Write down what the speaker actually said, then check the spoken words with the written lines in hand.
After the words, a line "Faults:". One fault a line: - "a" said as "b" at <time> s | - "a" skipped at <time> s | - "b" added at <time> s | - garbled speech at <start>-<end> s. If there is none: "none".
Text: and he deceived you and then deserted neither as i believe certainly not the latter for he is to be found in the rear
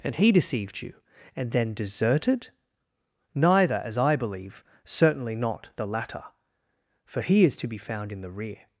and he deceived you and then deserted neither as i believe certainly not the latter for he is to be found in the rear
Faults:
none